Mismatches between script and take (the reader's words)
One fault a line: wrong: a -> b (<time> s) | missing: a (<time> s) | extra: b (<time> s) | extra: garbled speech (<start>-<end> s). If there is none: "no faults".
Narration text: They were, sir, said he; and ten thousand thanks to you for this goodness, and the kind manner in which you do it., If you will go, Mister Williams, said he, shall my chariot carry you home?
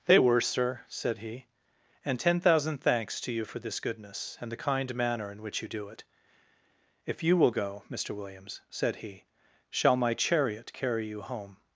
no faults